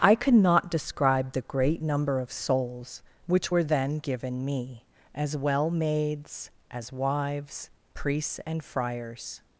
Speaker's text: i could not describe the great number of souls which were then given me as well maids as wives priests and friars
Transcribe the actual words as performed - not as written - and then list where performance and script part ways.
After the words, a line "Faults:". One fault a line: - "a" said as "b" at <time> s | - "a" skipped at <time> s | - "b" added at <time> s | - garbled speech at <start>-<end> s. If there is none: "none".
i could not describe the great number of souls which were then given me as well maids as wives priests and friars
Faults:
none